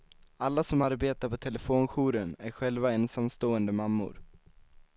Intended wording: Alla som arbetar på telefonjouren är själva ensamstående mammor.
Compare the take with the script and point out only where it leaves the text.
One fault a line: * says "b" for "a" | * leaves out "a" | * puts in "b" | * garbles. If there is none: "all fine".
all fine